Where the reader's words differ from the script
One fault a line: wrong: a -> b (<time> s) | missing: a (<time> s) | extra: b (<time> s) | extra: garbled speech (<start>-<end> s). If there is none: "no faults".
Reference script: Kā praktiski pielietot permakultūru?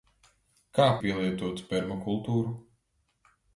missing: praktiski (0.9 s)